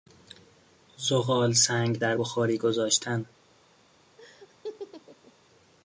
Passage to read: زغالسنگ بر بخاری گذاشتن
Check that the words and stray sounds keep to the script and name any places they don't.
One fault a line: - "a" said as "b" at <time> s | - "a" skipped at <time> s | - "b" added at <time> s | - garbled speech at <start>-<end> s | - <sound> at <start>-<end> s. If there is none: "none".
- "بر" said as "در" at 2.0 s
- laugh at 4.2-5.3 s